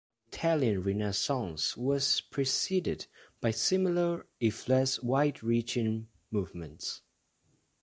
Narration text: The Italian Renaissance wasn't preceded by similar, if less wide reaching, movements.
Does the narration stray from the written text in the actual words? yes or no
yes